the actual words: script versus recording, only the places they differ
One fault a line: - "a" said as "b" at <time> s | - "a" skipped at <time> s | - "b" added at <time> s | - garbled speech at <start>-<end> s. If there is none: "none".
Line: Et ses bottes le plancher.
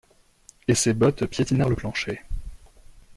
- "piétinèrent" added at 1.3 s